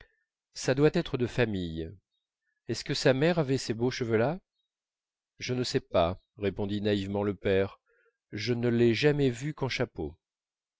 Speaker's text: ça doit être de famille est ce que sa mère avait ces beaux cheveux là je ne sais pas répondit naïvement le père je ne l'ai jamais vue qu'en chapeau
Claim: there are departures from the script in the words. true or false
false